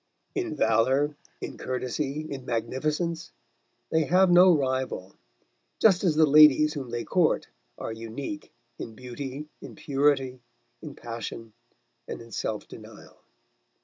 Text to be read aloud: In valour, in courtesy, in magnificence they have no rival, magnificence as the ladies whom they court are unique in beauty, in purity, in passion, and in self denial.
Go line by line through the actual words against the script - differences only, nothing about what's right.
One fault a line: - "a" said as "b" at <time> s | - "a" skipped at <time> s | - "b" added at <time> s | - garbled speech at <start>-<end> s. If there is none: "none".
- "magnificence" said as "just" at 5.8 s